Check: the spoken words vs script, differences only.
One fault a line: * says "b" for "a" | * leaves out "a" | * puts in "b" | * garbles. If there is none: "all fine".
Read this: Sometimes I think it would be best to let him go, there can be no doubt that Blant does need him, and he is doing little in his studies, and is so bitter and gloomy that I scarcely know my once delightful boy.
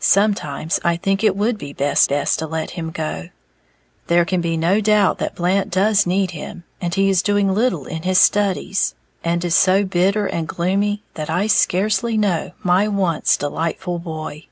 * puts in "best"